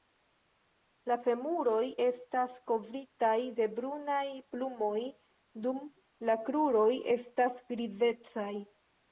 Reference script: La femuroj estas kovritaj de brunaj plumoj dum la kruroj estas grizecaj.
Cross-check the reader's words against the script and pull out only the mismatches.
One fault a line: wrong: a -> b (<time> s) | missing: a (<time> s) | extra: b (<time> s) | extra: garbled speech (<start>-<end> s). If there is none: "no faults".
no faults